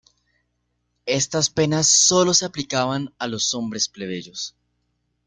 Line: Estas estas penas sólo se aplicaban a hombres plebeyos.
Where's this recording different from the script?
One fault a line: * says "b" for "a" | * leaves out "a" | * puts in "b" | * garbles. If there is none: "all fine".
* leaves out "estas"
* puts in "los"